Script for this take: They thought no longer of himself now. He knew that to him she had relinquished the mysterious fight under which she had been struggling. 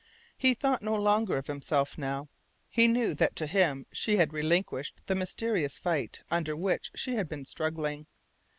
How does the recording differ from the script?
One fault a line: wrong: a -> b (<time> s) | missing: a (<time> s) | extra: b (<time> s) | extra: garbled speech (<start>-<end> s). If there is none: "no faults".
wrong: They -> He (0.3 s)